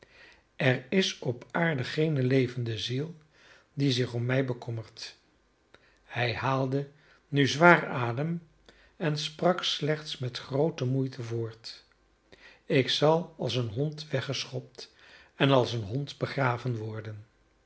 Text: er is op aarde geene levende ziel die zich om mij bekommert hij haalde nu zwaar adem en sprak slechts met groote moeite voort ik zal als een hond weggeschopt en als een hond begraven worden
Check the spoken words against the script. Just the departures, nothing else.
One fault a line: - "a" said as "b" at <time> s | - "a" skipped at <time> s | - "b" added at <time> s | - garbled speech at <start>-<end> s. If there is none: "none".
none